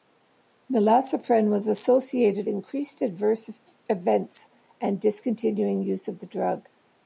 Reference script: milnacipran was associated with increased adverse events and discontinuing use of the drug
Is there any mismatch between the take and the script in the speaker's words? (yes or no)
yes